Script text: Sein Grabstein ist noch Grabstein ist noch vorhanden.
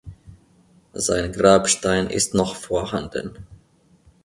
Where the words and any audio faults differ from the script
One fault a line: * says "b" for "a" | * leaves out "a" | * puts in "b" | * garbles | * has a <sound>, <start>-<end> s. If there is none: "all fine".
* leaves out "Grabstein ist noch"